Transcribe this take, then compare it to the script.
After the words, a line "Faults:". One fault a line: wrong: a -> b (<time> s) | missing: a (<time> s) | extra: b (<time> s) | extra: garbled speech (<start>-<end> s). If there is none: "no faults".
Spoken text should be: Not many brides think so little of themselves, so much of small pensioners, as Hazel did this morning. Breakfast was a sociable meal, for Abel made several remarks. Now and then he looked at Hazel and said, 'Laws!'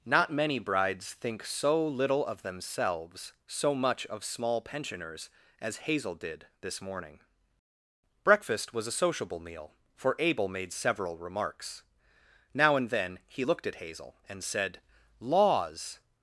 Not many brides think so little of themselves, so much of small pensioners, as Hazel did this morning. Breakfast was a sociable meal, for Abel made several remarks. Now and then he looked at Hazel and said, 'Laws!'
Faults:
no faults